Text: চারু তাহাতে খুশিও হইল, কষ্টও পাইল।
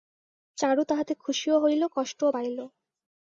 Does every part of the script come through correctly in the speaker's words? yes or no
yes